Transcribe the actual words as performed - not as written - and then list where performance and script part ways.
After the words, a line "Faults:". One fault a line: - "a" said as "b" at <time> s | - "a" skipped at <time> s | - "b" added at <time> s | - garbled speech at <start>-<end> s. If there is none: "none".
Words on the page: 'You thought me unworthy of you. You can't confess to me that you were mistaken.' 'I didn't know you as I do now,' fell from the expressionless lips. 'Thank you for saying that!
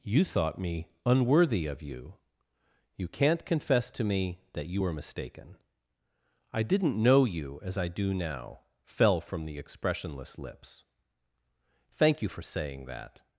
'You thought me unworthy of you. You can't confess to me that you were mistaken.' 'I didn't know you as I do now,' fell from the expressionless lips. 'Thank you for saying that!
Faults:
none